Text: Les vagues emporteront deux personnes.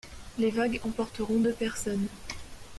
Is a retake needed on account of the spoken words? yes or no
no